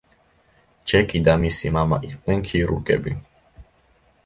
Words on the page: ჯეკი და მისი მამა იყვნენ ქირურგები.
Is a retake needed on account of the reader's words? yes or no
no